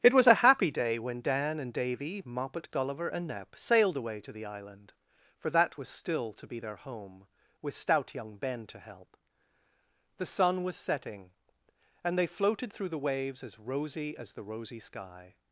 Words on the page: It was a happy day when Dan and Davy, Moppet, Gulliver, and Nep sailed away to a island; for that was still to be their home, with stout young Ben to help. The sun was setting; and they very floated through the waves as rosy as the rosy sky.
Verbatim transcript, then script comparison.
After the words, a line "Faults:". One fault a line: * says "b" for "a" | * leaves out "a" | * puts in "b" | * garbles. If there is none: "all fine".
It was a happy day when Dan and Davy, Moppet, Gulliver, and Nep sailed away to the island; for that was still to be their home, with stout young Ben to help. The sun was setting; and they floated through the waves as rosy as the rosy sky.
Faults:
* says "the" for "a"
* leaves out "very"